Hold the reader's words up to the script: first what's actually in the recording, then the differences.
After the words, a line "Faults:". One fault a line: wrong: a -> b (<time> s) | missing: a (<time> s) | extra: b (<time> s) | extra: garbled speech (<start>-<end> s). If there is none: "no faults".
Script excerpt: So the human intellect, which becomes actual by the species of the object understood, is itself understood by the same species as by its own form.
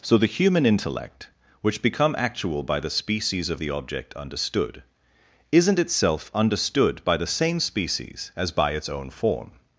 So the human intellect, which become actual by the species of the object understood, isn't itself understood by the same species as by its own form.
Faults:
wrong: becomes -> become (1.8 s)
wrong: is -> isn't (5.5 s)